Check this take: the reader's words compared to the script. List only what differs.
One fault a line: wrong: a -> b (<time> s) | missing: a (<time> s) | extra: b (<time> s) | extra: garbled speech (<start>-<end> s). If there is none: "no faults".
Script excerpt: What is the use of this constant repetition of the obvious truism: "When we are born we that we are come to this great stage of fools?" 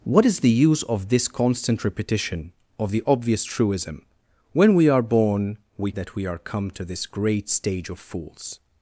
no faults